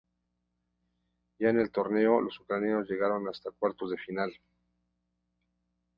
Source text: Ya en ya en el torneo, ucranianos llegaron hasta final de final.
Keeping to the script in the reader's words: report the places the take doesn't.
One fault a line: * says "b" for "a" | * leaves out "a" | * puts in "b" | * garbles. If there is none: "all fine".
* leaves out "ya en"
* puts in "los"
* says "cuartos" for "final"